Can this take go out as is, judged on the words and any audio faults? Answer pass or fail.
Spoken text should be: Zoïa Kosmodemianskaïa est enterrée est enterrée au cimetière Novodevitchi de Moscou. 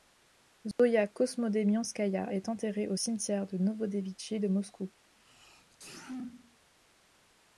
fail